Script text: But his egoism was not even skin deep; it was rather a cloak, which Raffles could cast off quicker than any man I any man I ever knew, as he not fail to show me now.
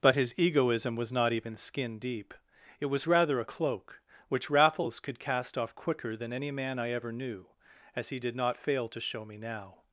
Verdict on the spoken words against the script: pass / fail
fail